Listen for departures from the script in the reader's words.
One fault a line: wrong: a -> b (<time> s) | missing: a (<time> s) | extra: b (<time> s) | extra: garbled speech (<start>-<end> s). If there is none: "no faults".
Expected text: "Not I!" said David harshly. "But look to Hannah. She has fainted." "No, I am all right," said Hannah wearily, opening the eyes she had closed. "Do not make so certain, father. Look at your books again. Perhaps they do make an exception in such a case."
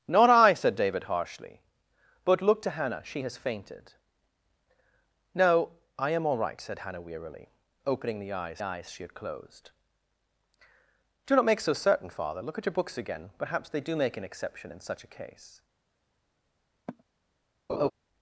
extra: eyes (8.6 s)